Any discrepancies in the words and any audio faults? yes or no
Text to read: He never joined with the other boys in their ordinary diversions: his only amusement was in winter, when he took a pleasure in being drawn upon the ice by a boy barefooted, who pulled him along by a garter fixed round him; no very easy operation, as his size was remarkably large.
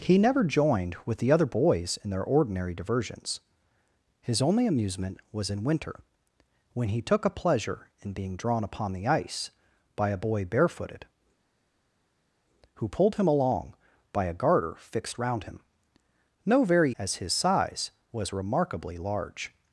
yes